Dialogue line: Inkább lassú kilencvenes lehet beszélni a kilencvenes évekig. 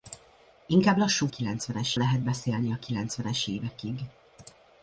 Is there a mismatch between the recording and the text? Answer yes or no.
no